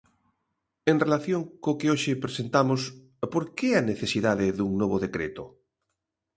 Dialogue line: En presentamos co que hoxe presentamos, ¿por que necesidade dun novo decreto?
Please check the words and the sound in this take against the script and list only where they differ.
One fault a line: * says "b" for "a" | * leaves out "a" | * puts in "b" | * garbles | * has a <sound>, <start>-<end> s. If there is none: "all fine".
* says "relación" for "presentamos"
* puts in "a"